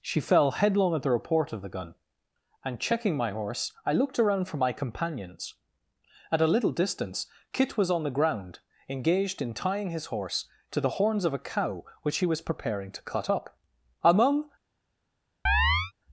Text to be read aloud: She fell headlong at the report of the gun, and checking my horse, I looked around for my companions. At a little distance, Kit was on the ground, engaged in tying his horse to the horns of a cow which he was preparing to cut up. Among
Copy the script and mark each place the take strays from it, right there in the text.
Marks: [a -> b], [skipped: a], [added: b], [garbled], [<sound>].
She fell headlong at the report of the gun, and checking my horse, I looked around for my companions. At a little distance, Kit was on the ground, engaged in tying his horse to the horns of a cow which he was preparing to cut up. Among [chirp]